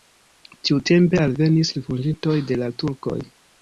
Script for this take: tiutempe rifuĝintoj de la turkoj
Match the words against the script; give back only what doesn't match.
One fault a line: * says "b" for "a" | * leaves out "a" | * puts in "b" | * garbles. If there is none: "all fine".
* puts in "alvenis"